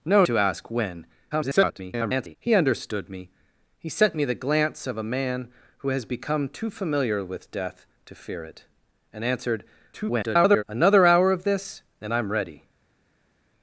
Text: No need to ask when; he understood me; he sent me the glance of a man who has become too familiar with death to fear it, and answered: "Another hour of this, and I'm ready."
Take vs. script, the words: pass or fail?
fail